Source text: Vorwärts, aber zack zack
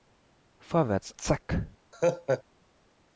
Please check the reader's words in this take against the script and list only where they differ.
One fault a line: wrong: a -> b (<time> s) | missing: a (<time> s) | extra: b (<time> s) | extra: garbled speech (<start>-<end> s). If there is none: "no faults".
missing: aber zack (1.1 s)